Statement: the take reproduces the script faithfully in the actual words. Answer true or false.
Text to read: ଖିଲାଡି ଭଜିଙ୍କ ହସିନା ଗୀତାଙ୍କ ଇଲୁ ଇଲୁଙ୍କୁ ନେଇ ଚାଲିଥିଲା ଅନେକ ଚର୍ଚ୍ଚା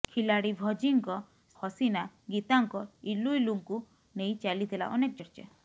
true